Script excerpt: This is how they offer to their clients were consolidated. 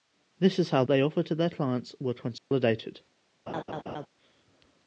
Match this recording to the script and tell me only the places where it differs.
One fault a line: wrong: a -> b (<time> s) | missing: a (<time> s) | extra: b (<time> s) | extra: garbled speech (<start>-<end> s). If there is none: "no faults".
no faults